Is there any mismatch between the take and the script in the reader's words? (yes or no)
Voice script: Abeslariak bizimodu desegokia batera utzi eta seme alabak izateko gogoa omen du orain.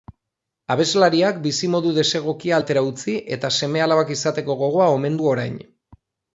no